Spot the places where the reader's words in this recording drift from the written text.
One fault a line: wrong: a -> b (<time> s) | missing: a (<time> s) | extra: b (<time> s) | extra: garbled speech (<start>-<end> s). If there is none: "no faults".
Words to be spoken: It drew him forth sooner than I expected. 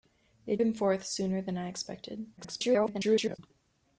missing: drew (0.6 s)
extra: garbled speech (2.4-3.4 s)